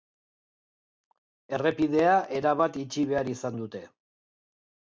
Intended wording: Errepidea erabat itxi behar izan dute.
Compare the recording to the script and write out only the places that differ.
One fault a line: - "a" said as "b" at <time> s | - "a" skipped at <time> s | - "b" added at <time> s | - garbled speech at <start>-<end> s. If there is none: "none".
none